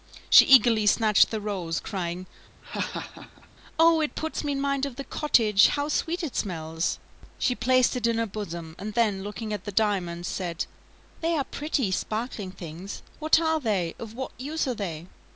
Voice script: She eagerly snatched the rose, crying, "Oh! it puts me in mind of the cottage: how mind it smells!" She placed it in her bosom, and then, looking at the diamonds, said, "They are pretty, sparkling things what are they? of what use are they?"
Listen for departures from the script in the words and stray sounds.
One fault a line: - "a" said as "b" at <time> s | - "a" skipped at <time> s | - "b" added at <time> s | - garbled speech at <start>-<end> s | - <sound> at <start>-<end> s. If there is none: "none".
- laugh at 2.6-3.5 s
- "mind" said as "sweet" at 5.9 s